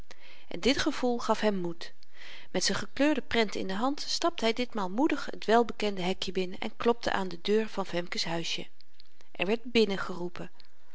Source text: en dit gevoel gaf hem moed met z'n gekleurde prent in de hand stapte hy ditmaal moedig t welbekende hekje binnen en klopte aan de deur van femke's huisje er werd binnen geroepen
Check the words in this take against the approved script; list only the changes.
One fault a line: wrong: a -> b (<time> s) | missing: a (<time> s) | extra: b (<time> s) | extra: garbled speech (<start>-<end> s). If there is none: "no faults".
no faults